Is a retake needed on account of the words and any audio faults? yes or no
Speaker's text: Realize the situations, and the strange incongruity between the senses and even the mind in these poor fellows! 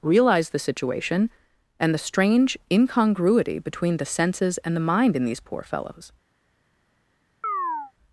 yes